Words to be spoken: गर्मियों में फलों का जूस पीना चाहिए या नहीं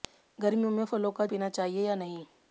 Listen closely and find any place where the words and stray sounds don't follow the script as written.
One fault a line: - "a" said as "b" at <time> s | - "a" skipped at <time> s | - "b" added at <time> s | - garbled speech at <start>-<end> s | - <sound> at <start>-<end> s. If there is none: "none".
- "जूस" skipped at 1.2 s